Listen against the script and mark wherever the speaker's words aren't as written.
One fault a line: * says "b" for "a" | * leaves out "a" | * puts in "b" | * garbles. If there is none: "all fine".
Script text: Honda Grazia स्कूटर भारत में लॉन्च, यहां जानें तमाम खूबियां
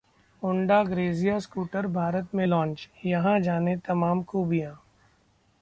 all fine